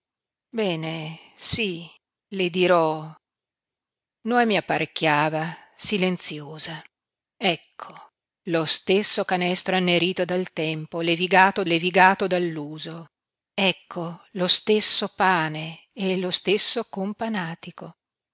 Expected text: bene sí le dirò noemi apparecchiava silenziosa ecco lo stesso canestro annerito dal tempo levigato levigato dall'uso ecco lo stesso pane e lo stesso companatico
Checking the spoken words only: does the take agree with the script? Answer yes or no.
yes